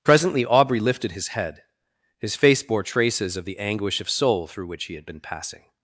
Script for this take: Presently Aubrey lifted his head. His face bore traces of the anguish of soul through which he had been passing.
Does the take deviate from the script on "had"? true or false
false